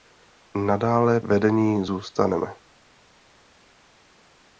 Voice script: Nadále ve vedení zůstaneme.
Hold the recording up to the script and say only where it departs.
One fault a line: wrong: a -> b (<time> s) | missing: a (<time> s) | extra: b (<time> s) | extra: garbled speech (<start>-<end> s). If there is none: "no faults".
missing: ve (1.2 s)